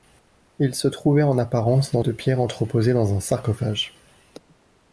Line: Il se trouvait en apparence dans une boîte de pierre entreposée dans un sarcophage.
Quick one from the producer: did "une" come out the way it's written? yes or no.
no